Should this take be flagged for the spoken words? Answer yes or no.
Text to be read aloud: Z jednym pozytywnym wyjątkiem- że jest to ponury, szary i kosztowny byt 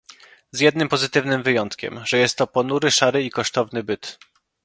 no